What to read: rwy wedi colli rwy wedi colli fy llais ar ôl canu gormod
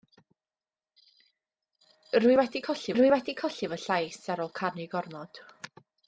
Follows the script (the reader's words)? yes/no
yes